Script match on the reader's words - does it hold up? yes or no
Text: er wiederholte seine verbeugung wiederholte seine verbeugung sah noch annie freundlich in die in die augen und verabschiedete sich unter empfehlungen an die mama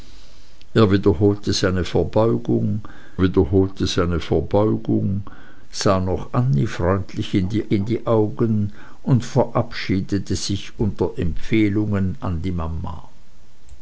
yes